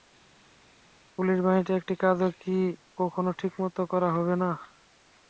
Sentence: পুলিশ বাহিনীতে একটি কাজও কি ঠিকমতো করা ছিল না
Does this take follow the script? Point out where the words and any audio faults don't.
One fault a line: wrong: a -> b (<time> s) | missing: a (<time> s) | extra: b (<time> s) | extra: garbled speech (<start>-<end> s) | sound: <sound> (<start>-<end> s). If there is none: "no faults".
extra: কখনো (3.0 s)
wrong: ছিল -> হবে (4.1 s)